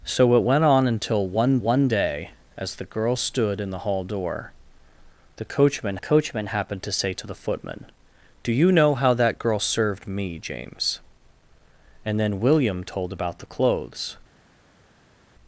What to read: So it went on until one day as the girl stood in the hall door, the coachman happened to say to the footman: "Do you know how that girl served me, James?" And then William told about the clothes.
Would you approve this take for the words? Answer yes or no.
no